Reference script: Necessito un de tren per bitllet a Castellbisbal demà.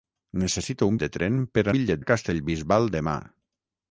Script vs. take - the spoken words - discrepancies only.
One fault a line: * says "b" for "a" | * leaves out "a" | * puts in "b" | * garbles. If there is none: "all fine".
all fine